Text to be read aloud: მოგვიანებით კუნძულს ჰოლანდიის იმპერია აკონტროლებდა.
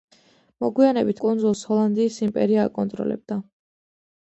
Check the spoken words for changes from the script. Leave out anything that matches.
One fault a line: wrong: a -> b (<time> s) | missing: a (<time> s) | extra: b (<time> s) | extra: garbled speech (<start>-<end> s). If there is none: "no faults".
no faults